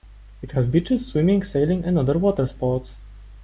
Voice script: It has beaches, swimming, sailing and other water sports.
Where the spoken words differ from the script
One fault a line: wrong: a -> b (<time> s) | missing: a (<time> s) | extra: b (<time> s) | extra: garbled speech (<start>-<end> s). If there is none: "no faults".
no faults